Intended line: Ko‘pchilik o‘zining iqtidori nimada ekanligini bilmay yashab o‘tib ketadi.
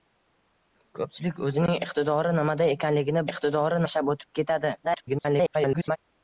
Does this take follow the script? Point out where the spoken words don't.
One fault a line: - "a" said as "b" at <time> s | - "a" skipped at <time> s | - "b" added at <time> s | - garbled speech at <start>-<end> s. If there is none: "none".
- "bilmay" said as "iqtidori" at 3.3 s
- garbled speech at 4.8-6.0 s